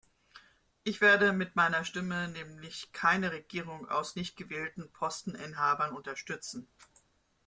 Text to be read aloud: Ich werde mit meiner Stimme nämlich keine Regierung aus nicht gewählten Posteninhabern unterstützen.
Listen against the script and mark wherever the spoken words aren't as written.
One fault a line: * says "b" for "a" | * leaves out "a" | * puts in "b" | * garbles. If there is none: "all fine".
all fine